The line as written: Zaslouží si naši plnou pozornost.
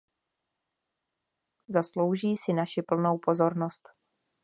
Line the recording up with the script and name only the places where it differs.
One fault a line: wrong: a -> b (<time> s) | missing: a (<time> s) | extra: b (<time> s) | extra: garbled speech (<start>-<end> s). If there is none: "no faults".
no faults